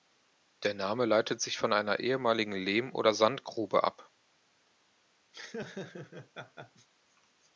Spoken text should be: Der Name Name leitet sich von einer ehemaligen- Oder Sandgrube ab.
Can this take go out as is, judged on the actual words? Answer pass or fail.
fail